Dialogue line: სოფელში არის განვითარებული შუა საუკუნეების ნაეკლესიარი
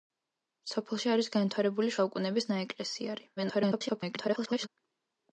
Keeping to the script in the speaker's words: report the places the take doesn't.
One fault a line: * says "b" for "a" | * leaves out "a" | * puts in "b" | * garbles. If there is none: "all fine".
* leaves out "შუა"
* garbles